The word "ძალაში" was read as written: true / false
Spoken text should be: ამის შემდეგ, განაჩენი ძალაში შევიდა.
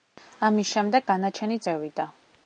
false